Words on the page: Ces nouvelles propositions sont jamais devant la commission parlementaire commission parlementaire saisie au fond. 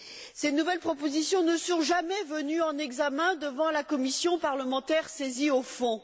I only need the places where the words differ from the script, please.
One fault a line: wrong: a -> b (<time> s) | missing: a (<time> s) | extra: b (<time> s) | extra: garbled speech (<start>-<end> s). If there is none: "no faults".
extra: ne (1.4 s)
extra: venues en examen (2.2 s)
missing: commission parlementaire (5.1 s)